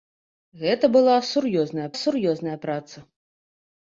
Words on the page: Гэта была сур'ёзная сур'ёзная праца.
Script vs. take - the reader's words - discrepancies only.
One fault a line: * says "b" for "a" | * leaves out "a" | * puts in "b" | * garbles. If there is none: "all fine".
all fine